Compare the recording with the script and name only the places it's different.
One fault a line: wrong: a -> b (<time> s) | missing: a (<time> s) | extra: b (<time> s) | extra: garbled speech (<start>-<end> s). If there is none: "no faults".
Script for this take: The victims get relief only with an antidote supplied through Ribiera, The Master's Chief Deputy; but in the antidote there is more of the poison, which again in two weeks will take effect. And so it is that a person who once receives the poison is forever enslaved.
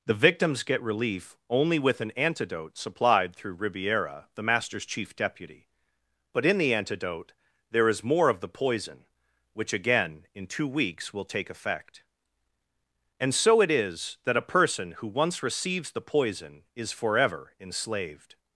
no faults